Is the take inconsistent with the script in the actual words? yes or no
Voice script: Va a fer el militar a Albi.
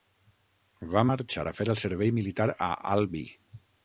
yes